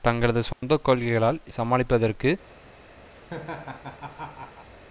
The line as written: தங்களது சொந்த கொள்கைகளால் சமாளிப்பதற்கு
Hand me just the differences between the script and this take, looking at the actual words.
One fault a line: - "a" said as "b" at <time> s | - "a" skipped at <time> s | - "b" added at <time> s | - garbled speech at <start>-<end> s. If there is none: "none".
none